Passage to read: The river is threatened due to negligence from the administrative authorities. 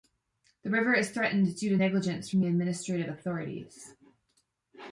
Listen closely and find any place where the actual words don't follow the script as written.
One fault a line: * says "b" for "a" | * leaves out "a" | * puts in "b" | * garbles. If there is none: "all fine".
all fine